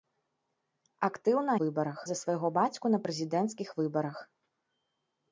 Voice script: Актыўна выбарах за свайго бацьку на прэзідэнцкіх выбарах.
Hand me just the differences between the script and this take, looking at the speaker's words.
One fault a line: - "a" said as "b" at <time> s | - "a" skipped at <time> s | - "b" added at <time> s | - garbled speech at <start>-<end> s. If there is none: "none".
none